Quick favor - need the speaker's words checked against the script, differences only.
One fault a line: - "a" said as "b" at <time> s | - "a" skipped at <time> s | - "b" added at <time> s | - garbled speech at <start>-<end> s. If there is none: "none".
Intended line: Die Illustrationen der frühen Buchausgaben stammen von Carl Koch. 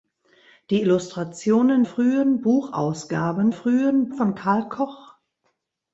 - "der" skipped at 1.8 s
- "stammen" said as "frühen" at 3.5 s